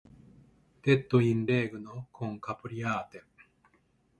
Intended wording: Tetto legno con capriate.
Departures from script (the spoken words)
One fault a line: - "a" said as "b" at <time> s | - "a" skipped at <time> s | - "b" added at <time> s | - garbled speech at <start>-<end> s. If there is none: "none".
- "in" added at 1.2 s